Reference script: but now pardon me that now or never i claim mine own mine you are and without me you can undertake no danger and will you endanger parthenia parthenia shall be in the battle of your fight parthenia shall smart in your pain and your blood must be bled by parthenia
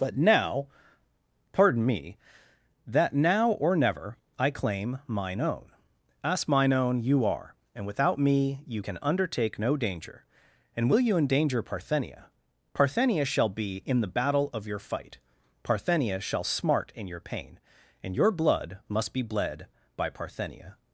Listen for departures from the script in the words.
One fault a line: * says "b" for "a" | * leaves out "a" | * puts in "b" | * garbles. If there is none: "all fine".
* puts in "as"
* puts in "own"